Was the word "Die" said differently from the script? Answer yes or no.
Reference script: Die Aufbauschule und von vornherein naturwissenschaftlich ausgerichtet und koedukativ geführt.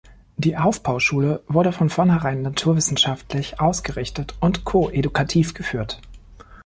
no